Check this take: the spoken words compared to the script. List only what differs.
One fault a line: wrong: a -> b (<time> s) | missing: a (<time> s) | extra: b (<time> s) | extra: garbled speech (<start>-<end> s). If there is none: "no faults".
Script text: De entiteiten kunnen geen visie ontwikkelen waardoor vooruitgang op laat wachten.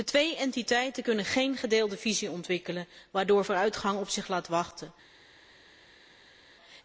extra: twee (0.1 s)
extra: gedeelde (1.6 s)
extra: zich (4.1 s)